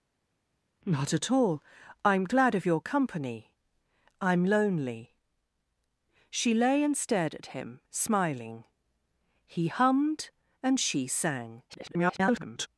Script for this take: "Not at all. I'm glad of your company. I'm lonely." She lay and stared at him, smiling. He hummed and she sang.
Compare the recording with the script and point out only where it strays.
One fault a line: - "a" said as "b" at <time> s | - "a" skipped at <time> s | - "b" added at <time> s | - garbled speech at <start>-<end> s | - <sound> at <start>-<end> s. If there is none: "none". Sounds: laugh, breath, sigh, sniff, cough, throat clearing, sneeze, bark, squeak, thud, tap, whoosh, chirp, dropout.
- garbled speech at 11.7-12.7 s